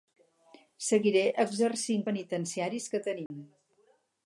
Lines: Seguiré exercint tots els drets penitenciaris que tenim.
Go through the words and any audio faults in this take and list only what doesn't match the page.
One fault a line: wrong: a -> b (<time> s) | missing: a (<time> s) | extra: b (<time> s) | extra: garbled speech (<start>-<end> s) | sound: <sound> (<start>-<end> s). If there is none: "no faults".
missing: tots els drets (2.0 s)
sound: dropout (3.3-3.3 s)